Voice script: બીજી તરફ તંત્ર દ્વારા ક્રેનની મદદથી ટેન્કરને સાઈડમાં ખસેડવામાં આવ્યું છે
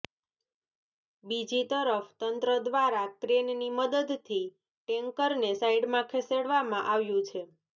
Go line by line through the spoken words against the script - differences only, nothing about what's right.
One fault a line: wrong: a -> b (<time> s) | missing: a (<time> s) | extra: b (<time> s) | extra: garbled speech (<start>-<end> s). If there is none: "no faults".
no faults